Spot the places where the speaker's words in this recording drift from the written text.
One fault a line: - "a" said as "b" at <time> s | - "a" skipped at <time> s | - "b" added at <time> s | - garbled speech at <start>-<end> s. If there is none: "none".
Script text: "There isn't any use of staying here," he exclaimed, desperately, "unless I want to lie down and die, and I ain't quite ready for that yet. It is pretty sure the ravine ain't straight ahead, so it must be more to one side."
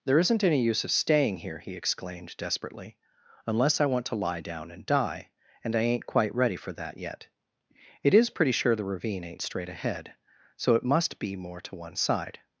none